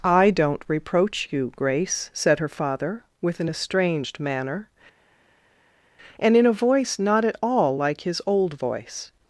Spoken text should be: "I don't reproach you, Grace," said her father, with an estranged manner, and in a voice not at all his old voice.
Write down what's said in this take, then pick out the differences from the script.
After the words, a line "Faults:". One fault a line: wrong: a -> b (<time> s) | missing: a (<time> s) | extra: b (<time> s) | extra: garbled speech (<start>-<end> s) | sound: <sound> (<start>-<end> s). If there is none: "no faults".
"I don't reproach you, Grace," said her father, with an estranged manner, and in a voice not at all like his old voice.
Faults:
extra: like (7.8 s)